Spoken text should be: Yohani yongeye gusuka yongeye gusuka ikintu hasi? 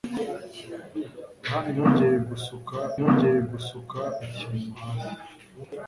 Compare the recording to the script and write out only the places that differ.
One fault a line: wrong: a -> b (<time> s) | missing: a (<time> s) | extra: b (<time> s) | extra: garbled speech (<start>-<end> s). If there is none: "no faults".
no faults